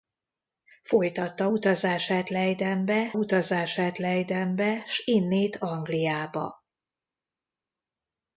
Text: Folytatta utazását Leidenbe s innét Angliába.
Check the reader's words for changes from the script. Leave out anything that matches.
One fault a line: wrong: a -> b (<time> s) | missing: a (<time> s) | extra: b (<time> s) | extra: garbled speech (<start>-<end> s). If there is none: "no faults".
extra: utazását Leidenbe (3.1 s)